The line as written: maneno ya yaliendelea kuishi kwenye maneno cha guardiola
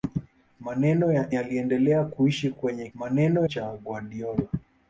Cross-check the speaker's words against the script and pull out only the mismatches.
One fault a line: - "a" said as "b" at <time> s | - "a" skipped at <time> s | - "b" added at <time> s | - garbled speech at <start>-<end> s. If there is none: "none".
none